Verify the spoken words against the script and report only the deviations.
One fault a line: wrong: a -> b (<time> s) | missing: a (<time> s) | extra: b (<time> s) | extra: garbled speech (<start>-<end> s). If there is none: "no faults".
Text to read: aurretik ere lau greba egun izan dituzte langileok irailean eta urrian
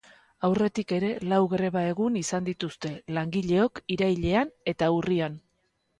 no faults